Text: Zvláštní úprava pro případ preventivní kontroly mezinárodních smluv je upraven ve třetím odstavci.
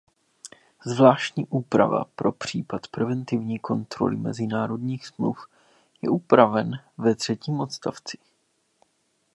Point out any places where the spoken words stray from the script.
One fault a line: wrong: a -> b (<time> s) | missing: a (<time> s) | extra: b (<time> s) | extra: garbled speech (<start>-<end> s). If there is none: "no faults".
no faults